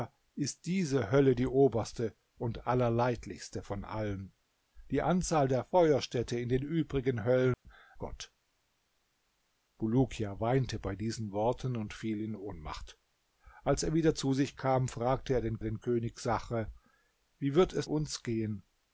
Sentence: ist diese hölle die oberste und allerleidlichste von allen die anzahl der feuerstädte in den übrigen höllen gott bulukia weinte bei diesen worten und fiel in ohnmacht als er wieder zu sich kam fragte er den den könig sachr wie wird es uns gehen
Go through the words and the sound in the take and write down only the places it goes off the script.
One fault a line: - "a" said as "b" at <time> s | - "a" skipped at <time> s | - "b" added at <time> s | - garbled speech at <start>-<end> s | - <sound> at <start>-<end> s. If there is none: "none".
- dropout at 7.5-7.7 s